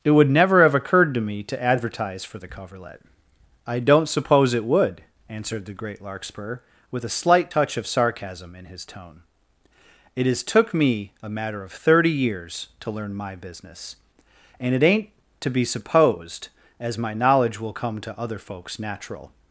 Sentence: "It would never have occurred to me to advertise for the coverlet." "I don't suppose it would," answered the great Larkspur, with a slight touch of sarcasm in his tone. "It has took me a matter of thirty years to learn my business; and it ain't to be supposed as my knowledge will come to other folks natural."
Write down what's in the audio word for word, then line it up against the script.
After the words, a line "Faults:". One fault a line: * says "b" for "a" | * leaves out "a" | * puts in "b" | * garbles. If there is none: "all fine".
"It would never have occurred to me to advertise for the coverlet." "I don't suppose it would," answered the great Larkspur, with a slight touch of sarcasm in his tone. "It has took me a matter of thirty years to learn my business; and it ain't to be supposed as my knowledge will come to other folks natural."
Faults:
all fine